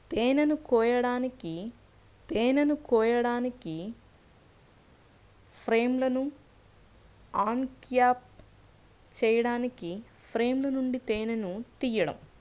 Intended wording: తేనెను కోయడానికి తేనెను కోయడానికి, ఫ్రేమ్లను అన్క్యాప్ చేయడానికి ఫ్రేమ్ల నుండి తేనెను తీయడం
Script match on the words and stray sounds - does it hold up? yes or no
yes